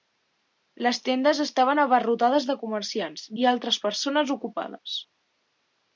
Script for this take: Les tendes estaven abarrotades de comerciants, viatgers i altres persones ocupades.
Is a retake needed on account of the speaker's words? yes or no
yes